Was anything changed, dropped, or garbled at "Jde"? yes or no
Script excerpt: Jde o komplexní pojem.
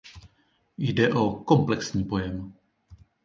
no